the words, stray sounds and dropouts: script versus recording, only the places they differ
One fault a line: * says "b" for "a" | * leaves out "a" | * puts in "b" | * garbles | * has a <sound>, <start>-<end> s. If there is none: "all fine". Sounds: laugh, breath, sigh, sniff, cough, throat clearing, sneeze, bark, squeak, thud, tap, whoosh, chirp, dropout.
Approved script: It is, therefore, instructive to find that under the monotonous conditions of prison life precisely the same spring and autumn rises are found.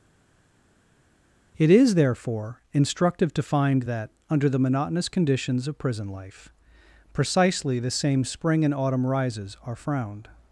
* says "frowned" for "found"